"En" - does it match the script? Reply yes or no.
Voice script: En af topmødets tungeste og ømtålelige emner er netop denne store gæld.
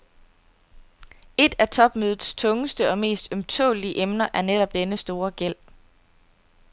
no